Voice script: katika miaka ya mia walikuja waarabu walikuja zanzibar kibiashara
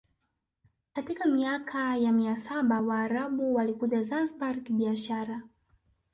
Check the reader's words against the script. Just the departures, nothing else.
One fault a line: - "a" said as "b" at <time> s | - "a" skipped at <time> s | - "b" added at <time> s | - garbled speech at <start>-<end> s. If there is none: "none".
- "walikuja" said as "saba" at 2.4 s